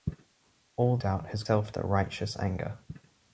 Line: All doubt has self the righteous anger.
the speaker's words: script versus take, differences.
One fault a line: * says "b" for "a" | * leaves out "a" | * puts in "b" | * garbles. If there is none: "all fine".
all fine